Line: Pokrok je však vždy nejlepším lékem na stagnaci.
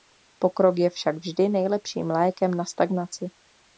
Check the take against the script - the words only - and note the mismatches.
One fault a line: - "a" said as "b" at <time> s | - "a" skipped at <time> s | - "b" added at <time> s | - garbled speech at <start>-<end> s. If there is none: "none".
none